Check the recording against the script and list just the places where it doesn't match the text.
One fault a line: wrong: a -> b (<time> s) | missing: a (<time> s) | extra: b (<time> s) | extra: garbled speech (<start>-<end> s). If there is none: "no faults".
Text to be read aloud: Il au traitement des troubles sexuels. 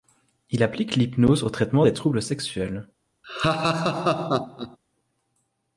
extra: applique l'hypnose (0.6 s)